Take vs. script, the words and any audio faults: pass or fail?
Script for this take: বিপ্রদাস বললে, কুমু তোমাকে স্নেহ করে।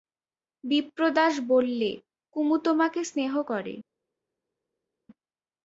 pass